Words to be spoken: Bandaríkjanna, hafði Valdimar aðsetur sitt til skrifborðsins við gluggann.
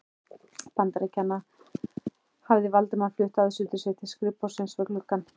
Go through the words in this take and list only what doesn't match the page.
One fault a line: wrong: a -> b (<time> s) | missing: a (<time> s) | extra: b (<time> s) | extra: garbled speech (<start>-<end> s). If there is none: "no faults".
extra: flutt (3.2 s)